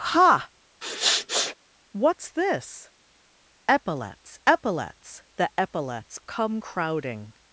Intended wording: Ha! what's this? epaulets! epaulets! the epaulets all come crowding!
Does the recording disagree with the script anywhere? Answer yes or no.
yes